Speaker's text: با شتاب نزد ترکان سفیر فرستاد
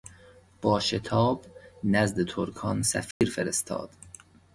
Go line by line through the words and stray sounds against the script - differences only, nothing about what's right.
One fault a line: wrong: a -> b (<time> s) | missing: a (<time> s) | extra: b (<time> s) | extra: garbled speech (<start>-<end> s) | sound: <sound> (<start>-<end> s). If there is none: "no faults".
sound: dropout (3.1-3.2 s)